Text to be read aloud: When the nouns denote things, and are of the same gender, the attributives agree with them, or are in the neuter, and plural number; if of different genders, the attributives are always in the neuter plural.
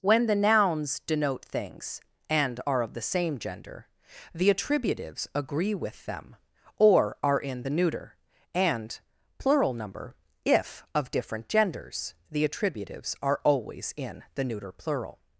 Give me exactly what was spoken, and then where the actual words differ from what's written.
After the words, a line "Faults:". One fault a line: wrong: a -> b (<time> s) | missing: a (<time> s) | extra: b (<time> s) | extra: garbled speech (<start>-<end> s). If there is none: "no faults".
When the nouns denote things, and are of the same gender, the attributives agree with them, or are in the neuter, and plural number; if of different genders, the attributives are always in the neuter plural.
Faults:
no faults